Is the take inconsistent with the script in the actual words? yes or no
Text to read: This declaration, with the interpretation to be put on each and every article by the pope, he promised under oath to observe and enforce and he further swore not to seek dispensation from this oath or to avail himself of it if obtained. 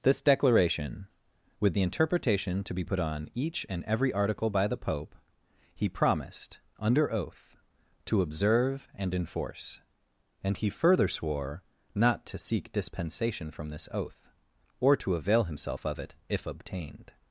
no